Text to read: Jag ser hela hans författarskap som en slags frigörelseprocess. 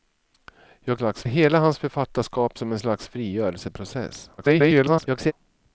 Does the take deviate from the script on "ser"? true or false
true